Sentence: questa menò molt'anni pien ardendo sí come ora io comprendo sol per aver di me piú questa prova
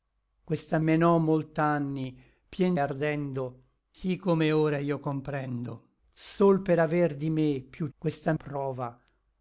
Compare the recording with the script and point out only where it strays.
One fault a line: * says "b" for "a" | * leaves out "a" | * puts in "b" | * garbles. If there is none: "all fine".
all fine